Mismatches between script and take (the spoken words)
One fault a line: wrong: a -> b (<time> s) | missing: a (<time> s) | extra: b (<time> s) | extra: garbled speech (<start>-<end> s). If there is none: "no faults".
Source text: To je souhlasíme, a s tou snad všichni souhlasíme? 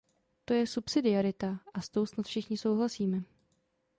wrong: souhlasíme -> subsidiarita (0.7 s)